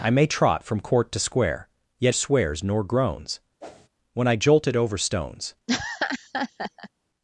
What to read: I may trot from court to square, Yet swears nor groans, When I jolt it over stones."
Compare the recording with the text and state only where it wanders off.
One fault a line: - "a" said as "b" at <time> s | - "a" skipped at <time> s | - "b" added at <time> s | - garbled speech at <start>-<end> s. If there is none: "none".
none